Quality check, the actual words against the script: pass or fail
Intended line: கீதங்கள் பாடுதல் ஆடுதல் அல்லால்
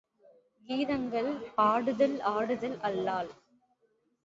pass